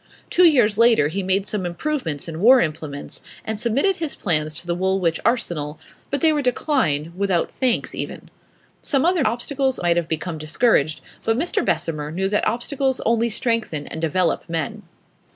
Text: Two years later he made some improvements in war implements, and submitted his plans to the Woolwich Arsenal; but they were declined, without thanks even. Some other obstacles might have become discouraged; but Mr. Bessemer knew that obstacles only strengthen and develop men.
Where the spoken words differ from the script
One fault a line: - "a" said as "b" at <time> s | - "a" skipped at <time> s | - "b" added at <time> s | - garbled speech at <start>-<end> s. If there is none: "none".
none